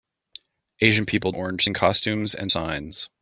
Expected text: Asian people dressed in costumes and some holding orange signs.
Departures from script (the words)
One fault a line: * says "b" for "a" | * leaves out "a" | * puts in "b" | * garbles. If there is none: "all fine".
* says "orange" for "dressed"
* leaves out "some holding orange"